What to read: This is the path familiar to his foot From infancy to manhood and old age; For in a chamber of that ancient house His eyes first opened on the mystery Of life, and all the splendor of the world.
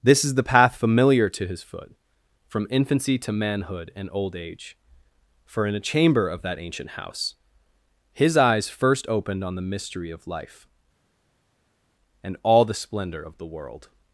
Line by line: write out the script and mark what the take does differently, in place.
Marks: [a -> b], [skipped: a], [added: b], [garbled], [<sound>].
This is the path familiar to his foot From infancy to manhood and old age; For in a chamber of that ancient house His eyes first opened on the mystery Of life, and all the splendor of the world.